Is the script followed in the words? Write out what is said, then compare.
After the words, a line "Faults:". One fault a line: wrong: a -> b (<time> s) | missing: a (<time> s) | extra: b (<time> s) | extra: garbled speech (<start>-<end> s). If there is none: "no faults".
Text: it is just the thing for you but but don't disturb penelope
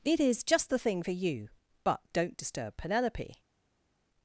it is just the thing for you but don't disturb penelope
Faults:
missing: but (2.0 s)